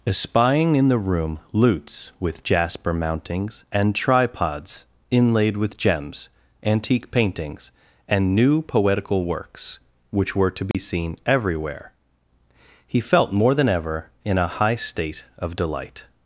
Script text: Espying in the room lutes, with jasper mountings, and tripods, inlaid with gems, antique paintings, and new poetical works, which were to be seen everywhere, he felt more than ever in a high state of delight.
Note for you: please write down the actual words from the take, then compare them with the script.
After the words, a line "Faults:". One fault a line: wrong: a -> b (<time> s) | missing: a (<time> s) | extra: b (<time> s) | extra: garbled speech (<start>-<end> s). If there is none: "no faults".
Espying in the room lutes, with jasper mountings, and tripods, inlaid with gems, antique paintings, and new poetical works, which were to be seen everywhere, he felt more than ever in a high state of delight.
Faults:
no faults